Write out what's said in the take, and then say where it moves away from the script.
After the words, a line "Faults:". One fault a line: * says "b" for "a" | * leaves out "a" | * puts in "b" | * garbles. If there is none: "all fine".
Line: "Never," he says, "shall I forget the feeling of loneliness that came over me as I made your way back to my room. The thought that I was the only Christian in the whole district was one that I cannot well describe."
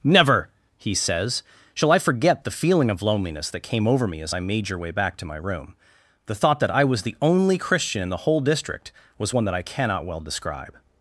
"Never," he says, "shall I forget the feeling of loneliness that came over me as I made your way back to my room. The thought that I was the only Christian in the whole district was one that I cannot well describe."
Faults:
all fine